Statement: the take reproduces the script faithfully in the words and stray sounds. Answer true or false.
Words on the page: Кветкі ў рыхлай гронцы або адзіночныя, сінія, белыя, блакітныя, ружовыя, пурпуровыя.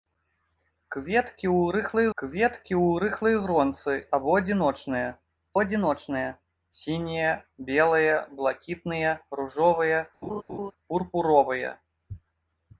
false